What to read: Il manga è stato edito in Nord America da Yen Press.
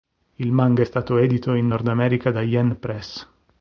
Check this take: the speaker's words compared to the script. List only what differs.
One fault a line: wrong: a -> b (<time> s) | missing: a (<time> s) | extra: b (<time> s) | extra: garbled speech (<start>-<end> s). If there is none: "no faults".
no faults